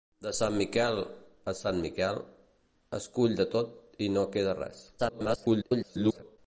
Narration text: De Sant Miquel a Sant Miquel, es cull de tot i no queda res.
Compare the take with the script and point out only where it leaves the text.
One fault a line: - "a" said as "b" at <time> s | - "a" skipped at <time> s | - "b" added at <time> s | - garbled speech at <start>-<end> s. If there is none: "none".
- garbled speech at 5.0-6.4 s